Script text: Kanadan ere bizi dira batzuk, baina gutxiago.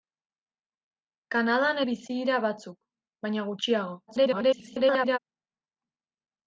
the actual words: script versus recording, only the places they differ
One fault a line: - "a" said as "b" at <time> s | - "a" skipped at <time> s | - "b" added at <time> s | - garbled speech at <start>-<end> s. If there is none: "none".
- "ere" skipped at 1.8 s
- garbled speech at 4.1-5.2 s